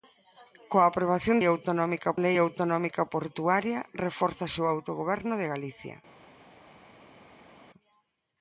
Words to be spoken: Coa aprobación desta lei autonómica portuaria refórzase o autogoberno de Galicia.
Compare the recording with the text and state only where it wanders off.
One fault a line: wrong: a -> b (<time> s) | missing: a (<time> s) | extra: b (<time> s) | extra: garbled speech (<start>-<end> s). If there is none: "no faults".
wrong: desta -> autonómica (1.4 s)